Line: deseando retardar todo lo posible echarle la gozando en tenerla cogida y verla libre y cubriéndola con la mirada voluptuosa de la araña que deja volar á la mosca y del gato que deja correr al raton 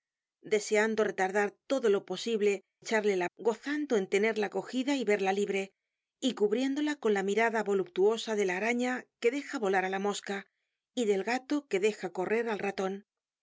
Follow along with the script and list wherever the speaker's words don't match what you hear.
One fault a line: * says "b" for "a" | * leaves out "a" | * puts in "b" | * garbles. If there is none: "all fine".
all fine